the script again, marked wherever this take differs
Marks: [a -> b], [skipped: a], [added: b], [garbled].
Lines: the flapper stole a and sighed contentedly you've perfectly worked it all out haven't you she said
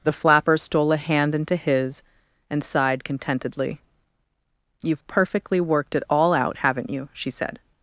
the flapper stole a [added: hand into his] and sighed contentedly you've perfectly worked it all out haven't you she said